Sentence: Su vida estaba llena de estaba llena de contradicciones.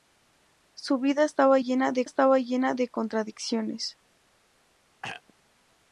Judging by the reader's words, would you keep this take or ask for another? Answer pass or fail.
pass